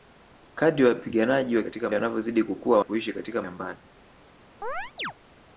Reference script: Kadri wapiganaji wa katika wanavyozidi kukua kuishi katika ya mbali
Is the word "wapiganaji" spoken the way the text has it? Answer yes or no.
yes